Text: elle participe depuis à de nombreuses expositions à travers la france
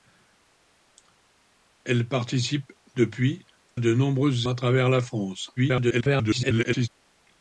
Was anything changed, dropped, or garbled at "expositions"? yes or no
yes